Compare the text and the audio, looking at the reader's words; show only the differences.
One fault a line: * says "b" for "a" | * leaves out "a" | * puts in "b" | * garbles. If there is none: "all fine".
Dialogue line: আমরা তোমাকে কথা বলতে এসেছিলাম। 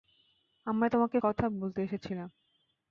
all fine